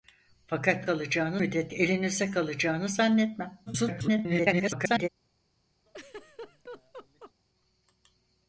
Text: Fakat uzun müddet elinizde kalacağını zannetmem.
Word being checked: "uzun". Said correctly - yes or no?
no